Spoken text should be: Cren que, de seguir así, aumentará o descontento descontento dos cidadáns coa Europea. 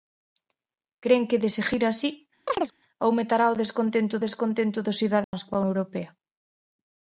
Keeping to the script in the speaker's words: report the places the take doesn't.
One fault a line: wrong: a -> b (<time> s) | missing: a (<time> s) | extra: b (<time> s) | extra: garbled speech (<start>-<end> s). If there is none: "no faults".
no faults